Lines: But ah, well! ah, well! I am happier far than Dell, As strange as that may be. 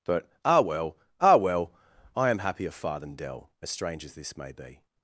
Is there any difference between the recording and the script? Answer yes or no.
yes